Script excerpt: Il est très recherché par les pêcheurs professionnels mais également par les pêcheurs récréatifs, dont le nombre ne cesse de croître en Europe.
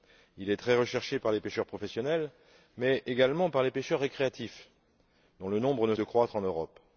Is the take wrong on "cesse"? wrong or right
wrong